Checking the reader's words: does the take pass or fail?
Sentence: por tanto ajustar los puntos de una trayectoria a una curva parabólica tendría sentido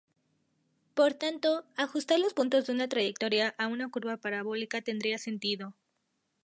pass